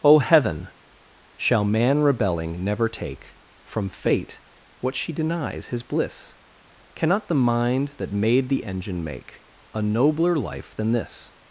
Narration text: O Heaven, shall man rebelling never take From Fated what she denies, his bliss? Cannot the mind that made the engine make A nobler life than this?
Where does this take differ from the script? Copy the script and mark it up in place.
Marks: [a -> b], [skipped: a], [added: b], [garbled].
O Heaven, shall man rebelling never take From [Fated -> Fate] what she denies, his bliss? Cannot the mind that made the engine make A nobler life than this?